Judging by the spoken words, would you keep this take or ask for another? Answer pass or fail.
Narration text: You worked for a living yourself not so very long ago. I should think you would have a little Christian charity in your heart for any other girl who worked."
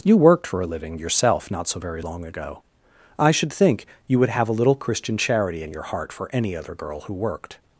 pass